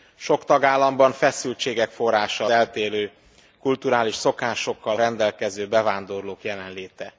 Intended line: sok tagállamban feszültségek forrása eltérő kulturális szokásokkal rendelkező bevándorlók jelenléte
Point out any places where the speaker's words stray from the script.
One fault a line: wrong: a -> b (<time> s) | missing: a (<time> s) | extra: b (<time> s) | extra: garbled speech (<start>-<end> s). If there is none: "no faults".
no faults